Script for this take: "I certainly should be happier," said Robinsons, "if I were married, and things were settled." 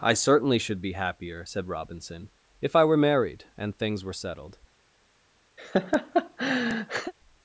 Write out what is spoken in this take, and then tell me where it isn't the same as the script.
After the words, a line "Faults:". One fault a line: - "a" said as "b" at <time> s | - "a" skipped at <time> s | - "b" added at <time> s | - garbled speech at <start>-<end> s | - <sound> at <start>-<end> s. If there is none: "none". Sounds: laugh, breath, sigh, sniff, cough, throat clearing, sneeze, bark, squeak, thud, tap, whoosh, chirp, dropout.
"I certainly should be happier," said Robinson, "if I were married, and things were settled."
Faults:
- "Robinsons" said as "Robinson" at 1.7 s
- laugh at 5.6-7.1 s